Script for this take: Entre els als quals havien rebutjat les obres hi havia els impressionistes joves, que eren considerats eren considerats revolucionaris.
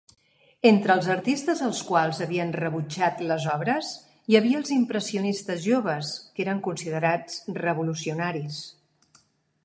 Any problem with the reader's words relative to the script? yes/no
yes